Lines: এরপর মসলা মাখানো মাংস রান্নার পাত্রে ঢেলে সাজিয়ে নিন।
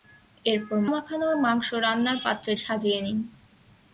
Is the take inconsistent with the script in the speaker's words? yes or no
yes